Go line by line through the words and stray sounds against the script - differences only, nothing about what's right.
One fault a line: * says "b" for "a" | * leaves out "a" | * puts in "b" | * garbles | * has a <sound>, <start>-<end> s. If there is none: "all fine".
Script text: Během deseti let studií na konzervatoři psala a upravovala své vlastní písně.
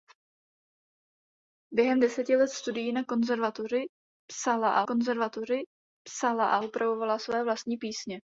* puts in "konzervatoři psala a"